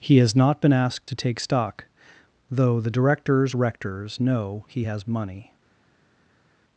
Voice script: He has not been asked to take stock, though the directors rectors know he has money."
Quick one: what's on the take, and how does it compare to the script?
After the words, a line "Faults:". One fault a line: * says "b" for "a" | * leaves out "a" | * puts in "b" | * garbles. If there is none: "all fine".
He has not been asked to take stock, though the directors rectors know he has money."
Faults:
all fine